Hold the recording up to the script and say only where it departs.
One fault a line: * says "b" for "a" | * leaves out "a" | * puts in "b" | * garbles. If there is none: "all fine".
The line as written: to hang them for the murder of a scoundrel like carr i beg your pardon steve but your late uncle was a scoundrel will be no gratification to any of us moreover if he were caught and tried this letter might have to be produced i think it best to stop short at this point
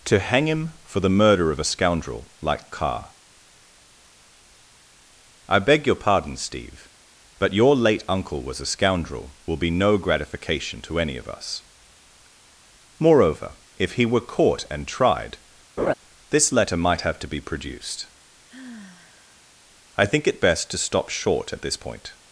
* says "him" for "them"